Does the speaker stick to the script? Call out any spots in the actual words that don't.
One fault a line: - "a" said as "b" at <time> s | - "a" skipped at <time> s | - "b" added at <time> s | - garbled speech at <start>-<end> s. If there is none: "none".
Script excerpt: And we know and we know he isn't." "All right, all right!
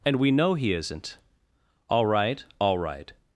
- "and we know" skipped at 0.6 s